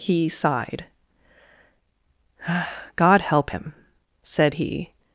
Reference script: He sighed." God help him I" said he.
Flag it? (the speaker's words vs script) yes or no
yes